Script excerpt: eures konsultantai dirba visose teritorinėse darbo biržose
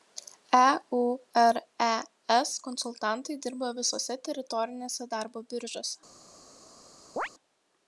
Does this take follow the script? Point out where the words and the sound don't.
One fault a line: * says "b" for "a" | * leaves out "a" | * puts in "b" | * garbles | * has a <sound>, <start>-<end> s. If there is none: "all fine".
* has a chirp, 7.2-7.3 s